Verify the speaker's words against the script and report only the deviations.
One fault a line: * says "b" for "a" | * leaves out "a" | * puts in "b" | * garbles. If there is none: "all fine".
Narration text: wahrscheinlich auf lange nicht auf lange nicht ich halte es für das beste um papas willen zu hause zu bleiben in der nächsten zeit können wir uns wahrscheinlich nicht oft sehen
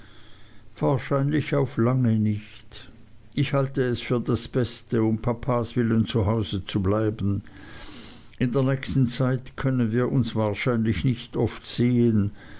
* leaves out "auf lange nicht"